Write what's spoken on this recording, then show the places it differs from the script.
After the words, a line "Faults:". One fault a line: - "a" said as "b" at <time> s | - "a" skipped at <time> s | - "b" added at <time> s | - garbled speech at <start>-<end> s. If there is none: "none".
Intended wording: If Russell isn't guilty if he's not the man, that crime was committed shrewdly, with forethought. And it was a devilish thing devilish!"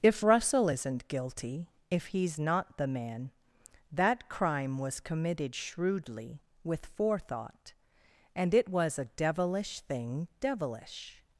If Russell isn't guilty if he's not the man, that crime was committed shrewdly, with forethought. And it was a devilish thing devilish!"
Faults:
none